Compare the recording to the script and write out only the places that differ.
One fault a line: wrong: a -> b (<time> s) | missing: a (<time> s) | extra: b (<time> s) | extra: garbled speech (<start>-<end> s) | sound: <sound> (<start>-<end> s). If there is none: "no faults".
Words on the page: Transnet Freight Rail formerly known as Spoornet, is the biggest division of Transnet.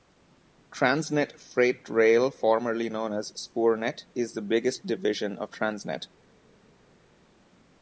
no faults